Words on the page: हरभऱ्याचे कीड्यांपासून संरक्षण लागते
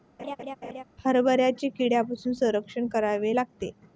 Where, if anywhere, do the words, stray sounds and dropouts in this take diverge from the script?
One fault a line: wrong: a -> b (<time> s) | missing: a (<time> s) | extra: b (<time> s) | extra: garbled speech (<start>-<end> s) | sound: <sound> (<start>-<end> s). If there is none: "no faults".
sound: laugh (0.2-0.8 s)
extra: करावे (2.9 s)